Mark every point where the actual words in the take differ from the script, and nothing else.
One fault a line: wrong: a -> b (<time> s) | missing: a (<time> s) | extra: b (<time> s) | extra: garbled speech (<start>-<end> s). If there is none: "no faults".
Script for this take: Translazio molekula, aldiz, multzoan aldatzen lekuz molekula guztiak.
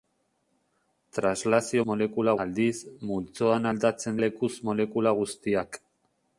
no faults